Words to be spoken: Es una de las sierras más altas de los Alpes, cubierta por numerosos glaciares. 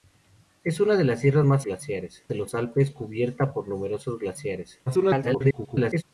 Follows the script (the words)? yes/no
no